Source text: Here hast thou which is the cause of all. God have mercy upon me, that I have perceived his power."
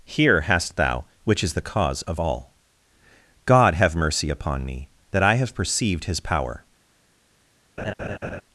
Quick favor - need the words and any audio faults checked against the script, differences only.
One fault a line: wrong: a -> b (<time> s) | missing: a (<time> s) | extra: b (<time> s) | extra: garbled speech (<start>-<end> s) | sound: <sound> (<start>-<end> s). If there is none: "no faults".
sound: laugh (7.8-8.4 s)